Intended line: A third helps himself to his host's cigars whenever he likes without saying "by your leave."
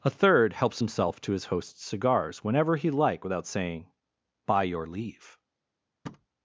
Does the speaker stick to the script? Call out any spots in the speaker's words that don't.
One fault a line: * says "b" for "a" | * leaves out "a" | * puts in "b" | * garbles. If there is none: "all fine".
* says "like" for "likes"